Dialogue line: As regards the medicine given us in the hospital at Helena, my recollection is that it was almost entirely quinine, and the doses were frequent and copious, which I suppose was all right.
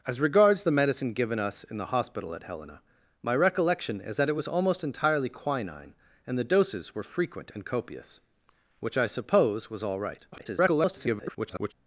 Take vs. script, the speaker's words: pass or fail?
fail